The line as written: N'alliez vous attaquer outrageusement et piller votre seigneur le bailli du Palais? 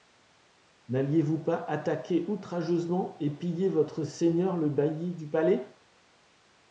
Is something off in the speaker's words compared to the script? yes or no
yes